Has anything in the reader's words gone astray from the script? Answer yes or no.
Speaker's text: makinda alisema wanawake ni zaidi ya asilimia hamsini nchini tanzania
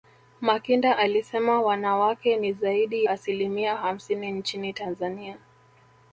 yes